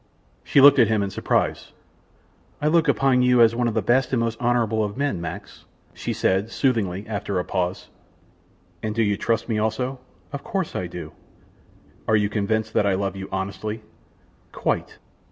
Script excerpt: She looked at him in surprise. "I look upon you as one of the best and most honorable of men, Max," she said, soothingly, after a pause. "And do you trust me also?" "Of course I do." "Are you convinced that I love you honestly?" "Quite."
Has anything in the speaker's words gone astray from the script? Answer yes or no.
no